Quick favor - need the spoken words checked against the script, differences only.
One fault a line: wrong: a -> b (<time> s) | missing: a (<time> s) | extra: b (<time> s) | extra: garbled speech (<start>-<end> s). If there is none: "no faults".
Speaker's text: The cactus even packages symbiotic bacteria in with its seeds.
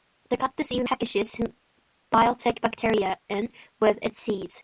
no faults